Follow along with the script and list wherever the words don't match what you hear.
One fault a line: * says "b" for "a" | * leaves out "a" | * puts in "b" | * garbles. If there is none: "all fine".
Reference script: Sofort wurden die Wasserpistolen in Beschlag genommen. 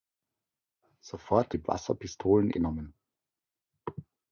* leaves out "wurden"
* leaves out "in Beschlag"